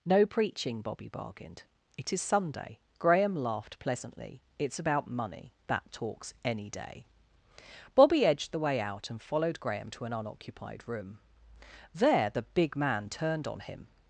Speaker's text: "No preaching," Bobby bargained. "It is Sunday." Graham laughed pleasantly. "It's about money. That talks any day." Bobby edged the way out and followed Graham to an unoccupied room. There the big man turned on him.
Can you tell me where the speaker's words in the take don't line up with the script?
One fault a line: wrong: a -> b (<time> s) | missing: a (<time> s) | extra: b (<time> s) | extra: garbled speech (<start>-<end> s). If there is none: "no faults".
no faults